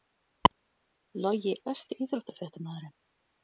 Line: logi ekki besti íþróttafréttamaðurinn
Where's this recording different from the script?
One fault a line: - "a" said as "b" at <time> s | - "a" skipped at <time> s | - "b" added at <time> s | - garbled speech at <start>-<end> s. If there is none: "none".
- "ekki" skipped at 1.5 s